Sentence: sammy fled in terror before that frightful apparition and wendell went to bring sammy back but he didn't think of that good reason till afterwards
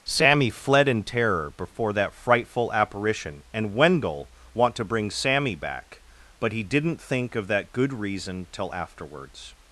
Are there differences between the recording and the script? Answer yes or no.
yes